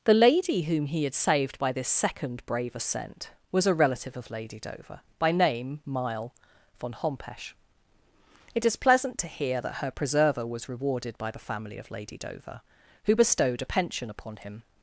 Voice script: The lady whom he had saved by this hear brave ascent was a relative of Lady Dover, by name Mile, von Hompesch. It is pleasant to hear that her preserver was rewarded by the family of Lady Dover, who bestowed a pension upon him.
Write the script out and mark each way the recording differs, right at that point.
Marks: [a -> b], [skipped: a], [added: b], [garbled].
The lady whom he had saved by this [hear -> second] brave ascent was a relative of Lady Dover, by name Mile, von Hompesch. It is pleasant to hear that her preserver was rewarded by the family of Lady Dover, who bestowed a pension upon him.